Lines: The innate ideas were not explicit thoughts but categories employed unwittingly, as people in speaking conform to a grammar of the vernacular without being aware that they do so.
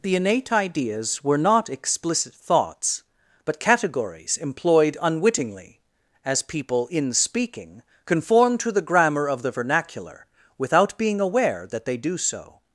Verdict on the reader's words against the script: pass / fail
fail